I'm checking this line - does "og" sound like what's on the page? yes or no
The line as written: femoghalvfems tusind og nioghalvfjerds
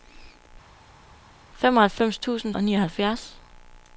yes